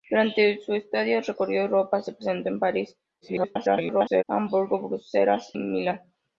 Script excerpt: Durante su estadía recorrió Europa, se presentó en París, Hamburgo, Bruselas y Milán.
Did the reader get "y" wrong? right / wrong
wrong